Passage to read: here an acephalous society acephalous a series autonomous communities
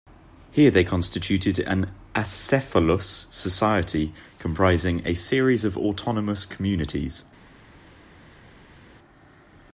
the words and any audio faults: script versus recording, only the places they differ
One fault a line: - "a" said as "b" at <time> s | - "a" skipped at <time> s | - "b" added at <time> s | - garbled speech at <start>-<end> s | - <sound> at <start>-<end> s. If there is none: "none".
- "they constituted" added at 0.7 s
- "acephalous" said as "comprising" at 4.4 s
- "of" added at 5.6 s